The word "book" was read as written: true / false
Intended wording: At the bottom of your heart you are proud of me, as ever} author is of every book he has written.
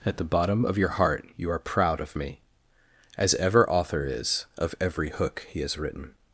false